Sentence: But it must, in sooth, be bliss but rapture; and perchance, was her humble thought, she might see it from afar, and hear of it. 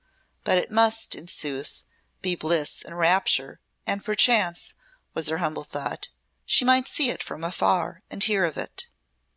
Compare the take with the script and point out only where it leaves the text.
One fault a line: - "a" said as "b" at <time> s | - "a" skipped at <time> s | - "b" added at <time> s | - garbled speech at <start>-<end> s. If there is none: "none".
- "but" said as "and" at 2.8 s